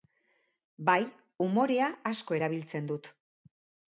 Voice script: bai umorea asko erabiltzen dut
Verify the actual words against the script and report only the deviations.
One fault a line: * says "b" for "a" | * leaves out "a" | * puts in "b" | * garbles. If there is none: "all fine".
all fine